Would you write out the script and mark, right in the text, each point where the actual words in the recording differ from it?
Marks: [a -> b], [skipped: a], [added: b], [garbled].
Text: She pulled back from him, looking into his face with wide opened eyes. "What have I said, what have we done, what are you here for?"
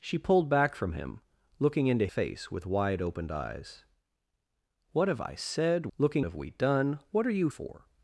She pulled back from him, looking into [skipped: his] face with wide opened eyes. "What have I said, [what -> looking] have we done, what are you [skipped: here] for?"